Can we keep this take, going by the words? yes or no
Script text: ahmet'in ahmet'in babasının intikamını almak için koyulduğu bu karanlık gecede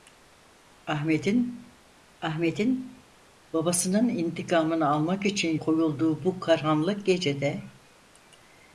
yes